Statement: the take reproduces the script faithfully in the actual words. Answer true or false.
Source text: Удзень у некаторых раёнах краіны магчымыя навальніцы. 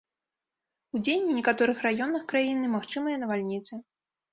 true